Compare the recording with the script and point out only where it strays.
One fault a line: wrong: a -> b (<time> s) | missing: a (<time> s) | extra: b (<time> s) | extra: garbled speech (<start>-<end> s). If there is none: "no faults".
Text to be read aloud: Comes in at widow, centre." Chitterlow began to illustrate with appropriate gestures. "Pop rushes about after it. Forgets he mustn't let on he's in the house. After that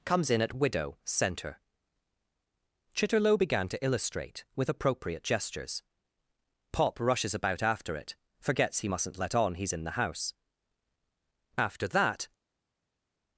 no faults